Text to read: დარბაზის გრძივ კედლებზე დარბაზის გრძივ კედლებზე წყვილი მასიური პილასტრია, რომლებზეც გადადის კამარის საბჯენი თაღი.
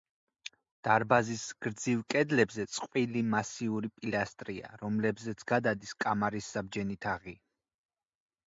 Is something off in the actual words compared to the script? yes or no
yes